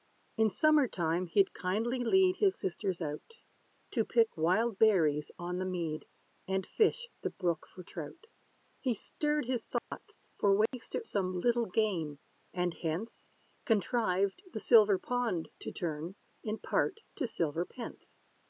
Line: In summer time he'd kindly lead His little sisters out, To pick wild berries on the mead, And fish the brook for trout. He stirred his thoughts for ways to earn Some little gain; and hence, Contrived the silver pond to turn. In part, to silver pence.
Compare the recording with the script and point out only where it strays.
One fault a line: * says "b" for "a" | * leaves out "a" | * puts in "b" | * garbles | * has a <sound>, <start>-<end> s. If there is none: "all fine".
* leaves out "little"
* has a dropout, 9.8-9.9 s
* has a dropout, 10.7-10.7 s
* leaves out "earn"